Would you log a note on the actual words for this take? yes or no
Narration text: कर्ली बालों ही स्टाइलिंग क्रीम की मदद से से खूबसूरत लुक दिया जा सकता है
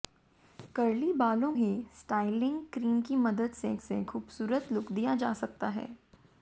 no